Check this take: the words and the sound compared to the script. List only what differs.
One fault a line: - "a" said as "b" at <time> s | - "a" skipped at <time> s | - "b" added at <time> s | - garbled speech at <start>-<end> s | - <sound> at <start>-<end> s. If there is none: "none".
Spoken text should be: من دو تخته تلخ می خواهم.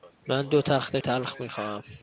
none